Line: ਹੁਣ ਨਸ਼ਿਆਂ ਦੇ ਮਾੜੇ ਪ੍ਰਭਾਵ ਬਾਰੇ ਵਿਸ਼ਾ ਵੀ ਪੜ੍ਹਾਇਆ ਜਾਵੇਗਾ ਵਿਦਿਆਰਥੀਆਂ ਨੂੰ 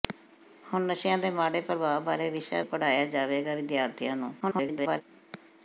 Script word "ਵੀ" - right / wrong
wrong